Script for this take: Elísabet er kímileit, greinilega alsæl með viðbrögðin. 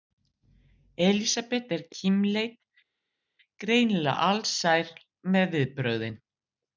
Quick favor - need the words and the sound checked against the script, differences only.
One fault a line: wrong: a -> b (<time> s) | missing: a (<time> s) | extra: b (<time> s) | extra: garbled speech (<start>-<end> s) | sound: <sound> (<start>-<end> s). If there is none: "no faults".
no faults